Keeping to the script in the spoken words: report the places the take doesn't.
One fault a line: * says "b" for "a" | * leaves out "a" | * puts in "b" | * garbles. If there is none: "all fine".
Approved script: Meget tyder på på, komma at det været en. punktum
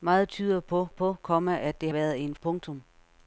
all fine